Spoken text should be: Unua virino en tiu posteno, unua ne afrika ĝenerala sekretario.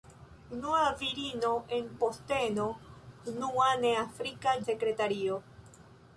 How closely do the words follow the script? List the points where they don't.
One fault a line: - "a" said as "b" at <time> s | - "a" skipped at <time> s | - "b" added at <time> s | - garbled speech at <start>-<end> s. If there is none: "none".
- "tiu" skipped at 1.9 s
- "ĝenerala" skipped at 4.6 s